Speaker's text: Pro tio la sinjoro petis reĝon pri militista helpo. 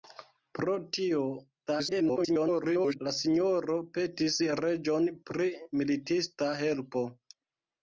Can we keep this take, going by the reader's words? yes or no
no